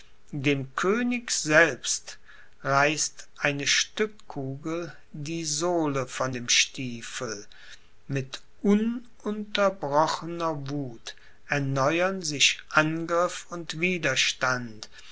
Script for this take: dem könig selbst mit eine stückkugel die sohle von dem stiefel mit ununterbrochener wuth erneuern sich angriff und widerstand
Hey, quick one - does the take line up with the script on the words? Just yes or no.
no